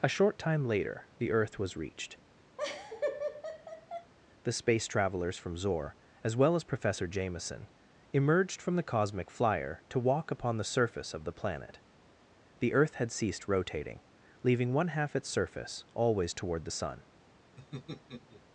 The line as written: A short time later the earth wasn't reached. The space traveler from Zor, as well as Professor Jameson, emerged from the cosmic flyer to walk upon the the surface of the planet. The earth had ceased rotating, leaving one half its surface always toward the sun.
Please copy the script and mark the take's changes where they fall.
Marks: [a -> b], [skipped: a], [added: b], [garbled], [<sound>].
A short time later the earth [wasn't -> was] reached. [laugh] The space [traveler -> travelers] from Zor, as well as Professor Jameson, emerged from the cosmic flyer to walk upon the [skipped: the] surface of the planet. The earth had ceased rotating, leaving one half its surface always toward the sun. [laugh]